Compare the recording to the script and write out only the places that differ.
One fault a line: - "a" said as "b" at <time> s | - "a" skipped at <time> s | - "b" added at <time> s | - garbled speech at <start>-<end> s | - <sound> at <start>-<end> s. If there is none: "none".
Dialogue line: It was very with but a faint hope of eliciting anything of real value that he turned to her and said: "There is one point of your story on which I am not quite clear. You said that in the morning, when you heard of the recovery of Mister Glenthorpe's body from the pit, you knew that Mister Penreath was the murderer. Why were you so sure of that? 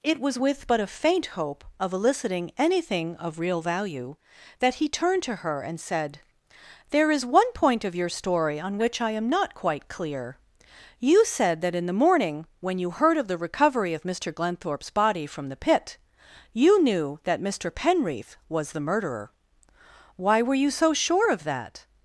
- "very" skipped at 0.4 s